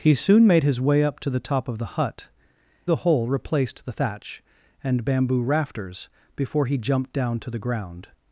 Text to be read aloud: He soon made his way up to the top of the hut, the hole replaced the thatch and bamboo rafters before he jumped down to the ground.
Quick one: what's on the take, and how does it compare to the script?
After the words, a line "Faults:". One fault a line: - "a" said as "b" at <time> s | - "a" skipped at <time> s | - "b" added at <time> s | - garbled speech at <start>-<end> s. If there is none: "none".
He soon made his way up to the top of the hut, the hole replaced the thatch and bamboo rafters before he jumped down to the ground.
Faults:
none